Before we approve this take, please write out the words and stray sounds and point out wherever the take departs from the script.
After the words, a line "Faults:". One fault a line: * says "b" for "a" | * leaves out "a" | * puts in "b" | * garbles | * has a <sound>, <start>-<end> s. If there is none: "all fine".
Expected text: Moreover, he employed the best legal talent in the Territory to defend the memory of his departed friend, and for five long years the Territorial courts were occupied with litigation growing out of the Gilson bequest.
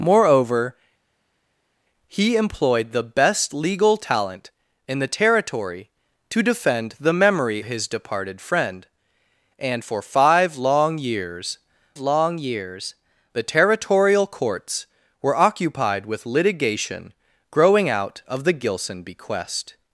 Moreover, he employed the best legal talent in the Territory to defend the memory his departed friend, and for five long years long years the Territorial courts were occupied with litigation growing out of the Gilson bequest.
Faults:
* leaves out "of"
* puts in "long years"